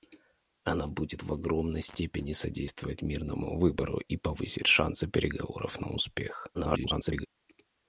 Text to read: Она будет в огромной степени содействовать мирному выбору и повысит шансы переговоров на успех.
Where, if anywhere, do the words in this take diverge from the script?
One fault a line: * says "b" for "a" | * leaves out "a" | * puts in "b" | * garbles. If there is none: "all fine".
* garbles